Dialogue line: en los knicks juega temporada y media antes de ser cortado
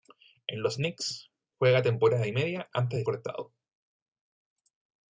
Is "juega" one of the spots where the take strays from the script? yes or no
no